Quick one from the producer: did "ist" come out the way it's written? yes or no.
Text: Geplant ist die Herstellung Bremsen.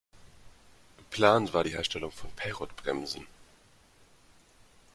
no